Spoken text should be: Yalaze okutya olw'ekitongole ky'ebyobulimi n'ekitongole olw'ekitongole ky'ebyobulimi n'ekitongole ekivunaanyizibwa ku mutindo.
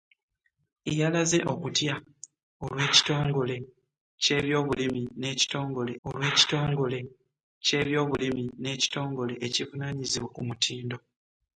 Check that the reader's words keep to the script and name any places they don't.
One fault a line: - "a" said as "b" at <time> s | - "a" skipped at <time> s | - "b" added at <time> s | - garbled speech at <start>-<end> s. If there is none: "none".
none